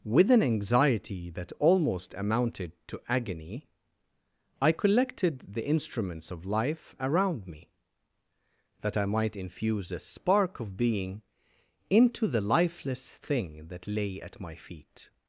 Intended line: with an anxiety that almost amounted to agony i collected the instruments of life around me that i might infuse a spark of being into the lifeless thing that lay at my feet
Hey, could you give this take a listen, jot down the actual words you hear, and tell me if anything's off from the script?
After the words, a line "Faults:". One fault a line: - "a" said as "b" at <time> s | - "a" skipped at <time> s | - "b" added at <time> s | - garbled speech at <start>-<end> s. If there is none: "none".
with an anxiety that almost amounted to agony i collected the instruments of life around me that i might infuse a spark of being into the lifeless thing that lay at my feet
Faults:
none